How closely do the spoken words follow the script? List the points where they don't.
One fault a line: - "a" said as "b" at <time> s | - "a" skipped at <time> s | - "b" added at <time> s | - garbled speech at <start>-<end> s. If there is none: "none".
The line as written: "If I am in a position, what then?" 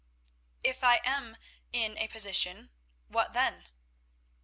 none